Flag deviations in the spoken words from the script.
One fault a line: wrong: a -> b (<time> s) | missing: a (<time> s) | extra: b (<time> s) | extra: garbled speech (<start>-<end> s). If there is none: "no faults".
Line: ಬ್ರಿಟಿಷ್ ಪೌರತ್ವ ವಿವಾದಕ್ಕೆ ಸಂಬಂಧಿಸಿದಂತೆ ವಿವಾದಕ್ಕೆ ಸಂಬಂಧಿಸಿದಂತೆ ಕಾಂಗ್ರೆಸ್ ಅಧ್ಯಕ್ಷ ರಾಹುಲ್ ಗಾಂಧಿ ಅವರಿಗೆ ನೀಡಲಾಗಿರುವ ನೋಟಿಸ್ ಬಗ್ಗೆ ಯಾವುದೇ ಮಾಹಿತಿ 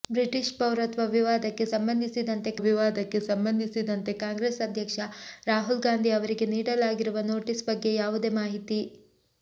no faults